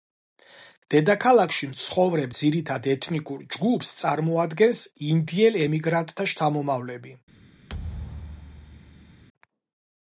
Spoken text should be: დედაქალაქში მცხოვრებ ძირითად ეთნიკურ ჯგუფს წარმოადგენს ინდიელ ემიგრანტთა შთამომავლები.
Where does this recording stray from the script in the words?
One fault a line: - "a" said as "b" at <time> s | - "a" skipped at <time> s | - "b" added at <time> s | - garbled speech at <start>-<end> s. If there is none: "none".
none